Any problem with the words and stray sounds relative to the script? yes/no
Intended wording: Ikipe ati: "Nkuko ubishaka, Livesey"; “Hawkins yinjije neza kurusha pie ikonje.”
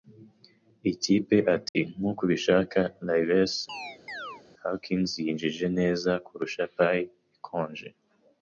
yes